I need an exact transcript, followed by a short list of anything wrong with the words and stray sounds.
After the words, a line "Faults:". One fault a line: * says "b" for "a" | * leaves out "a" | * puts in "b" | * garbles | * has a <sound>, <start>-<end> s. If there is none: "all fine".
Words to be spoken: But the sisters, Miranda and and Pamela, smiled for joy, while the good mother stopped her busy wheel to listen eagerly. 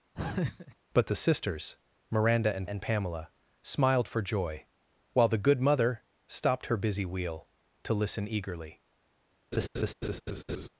But the sisters, Miranda and and Pamela, smiled for joy, while the good mother stopped her busy wheel to listen eagerly.
Faults:
* has a laugh, 0.2-0.8 s
* has a laugh, 9.5-10.7 s